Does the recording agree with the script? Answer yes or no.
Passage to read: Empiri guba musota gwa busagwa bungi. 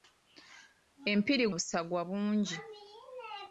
no